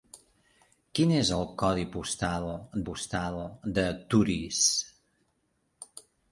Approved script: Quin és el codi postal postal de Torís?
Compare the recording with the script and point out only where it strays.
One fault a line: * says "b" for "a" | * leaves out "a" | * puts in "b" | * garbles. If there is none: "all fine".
all fine